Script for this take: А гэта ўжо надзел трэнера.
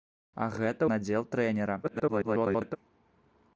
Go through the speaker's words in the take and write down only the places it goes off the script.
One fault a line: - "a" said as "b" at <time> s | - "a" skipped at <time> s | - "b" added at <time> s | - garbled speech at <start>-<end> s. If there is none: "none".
- "ўжо" skipped at 0.9 s
- garbled speech at 1.8-2.8 s